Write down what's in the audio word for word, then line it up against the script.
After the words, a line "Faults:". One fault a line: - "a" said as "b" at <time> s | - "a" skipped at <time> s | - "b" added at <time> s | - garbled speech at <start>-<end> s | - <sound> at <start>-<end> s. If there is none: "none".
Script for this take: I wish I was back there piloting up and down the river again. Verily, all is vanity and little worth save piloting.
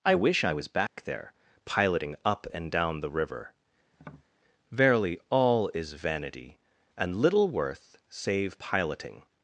I wish I was back there piloting up and down the river. Verily, all is vanity and little worth save piloting.
Faults:
- dropout at 0.9-1.0 s
- "again" skipped at 3.5 s
- tap at 3.9-4.3 s